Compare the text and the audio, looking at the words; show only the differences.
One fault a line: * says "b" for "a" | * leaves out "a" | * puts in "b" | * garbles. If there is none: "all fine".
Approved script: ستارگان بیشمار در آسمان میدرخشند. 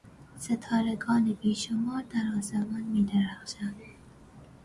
all fine